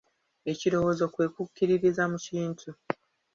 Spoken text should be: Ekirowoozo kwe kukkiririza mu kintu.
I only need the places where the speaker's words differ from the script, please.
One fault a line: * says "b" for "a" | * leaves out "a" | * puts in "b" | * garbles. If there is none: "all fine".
all fine